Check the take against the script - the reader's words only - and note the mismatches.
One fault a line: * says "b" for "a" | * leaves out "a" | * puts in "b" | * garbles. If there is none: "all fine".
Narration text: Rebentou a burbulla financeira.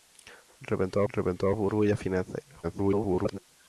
* puts in "rebentou"
* garbles